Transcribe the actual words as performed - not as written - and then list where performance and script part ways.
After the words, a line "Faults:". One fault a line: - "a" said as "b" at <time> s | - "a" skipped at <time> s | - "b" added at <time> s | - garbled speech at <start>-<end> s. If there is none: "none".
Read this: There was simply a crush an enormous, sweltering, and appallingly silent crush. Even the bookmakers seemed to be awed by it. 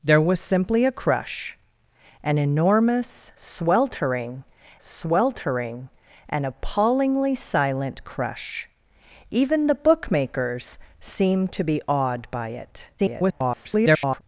There was simply a crush an enormous, sweltering sweltering, and appallingly silent crush. Even the bookmakers seemed to be awed by it. [garbled]
Faults:
- "sweltering" added at 4.8 s
- garbled speech at 13.0-14.2 s